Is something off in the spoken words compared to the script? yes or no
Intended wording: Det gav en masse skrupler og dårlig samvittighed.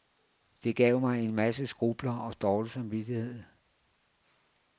yes